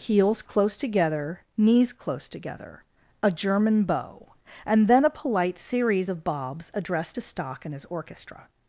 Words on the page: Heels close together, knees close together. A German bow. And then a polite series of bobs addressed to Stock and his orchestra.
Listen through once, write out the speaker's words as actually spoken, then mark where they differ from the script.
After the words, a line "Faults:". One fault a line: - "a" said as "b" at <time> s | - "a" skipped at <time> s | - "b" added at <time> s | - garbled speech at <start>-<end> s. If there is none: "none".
Heels close together, knees close together. A German bow. And then a polite series of bobs addressed to Stock and his orchestra.
Faults:
none